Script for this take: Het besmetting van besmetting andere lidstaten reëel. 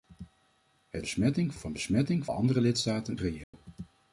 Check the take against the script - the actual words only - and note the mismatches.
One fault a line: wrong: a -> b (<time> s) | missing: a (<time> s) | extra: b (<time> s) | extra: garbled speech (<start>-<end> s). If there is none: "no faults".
no faults